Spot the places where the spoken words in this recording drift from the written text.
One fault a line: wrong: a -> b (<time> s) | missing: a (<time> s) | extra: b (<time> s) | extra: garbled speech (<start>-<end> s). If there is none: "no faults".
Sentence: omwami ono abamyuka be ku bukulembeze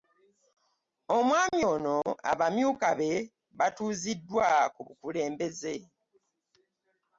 extra: batuuziddwa (3.6 s)